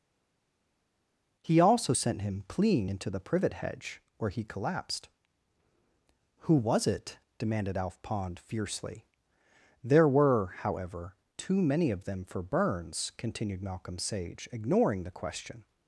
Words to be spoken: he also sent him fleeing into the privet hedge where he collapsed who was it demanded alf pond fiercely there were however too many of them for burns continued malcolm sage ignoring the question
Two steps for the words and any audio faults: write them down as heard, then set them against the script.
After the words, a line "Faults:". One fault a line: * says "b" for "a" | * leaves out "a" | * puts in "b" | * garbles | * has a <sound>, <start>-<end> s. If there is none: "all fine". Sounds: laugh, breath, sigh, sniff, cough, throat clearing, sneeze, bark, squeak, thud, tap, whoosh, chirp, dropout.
he also sent him fleeing into the privet hedge where he collapsed who was it demanded alf pond fiercely there were however too many of them for burns continued malcolm sage ignoring the question
Faults:
all fine